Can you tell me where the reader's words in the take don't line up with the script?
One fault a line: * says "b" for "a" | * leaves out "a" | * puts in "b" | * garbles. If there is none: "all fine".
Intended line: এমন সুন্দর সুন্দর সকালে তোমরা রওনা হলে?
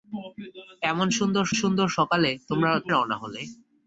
all fine